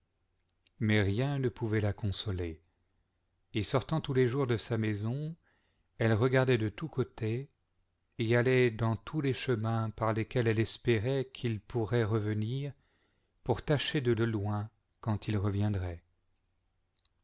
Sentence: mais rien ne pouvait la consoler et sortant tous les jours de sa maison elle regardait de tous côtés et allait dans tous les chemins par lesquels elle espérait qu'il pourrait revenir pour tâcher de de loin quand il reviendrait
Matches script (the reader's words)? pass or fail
pass